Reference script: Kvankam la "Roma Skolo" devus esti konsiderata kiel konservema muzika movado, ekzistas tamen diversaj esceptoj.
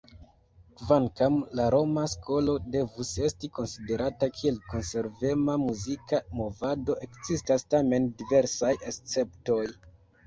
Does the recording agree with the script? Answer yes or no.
yes